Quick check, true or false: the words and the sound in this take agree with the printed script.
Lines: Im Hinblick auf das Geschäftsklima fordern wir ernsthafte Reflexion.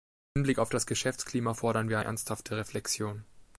true